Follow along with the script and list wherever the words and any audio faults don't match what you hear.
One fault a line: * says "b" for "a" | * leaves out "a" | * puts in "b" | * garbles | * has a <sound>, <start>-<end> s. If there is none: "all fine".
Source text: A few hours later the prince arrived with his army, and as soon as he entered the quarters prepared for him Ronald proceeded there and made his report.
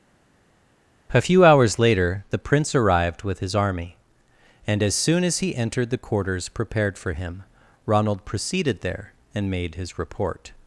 all fine